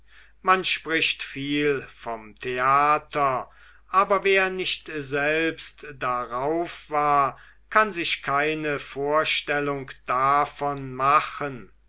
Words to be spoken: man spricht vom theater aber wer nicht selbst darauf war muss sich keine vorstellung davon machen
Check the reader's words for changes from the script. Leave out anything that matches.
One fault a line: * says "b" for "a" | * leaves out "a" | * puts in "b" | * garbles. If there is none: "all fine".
* puts in "viel"
* says "kann" for "muss"